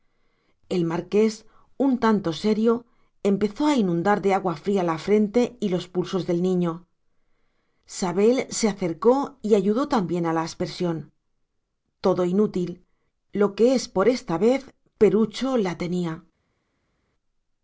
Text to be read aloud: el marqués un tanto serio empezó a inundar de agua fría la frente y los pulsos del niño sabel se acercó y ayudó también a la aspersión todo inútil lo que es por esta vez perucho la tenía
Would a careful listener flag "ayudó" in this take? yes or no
no